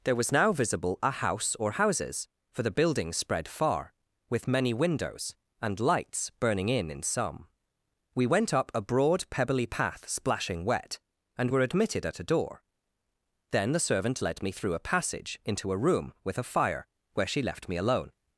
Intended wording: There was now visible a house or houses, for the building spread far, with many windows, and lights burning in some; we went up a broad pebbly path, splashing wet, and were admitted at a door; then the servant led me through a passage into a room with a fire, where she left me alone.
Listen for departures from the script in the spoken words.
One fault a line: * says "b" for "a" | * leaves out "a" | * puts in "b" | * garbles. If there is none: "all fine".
* puts in "in"